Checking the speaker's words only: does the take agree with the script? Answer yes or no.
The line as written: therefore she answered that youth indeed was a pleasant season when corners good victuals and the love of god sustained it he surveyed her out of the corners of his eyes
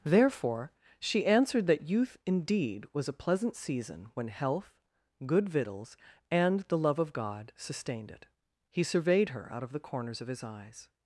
no